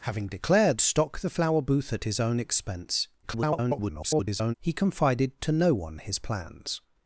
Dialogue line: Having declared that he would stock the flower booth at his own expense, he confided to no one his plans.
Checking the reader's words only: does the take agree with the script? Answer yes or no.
no